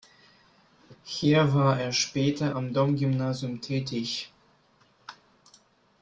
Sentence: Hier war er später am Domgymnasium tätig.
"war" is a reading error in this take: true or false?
false